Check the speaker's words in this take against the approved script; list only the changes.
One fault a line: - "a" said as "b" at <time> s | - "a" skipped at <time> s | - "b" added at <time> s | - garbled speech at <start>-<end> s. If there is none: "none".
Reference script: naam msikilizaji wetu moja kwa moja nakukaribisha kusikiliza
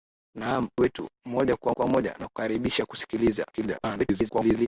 - "msikilizaji" skipped at 0.7 s
- "kwa" added at 1.7 s
- garbled speech at 3.5-4.7 s